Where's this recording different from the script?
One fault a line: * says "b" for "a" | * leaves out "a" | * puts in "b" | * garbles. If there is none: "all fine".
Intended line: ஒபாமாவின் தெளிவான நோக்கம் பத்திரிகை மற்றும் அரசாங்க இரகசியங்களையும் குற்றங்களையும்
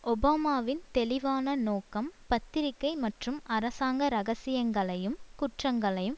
all fine